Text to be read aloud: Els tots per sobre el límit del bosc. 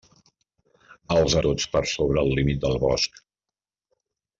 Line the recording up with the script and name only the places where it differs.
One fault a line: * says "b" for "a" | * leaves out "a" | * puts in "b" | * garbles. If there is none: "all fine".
all fine